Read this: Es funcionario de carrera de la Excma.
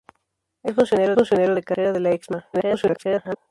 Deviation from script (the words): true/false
true